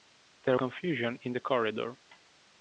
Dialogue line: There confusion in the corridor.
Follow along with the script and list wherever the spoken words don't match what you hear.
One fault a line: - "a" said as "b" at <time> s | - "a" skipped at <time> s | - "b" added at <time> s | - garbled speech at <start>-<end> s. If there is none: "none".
none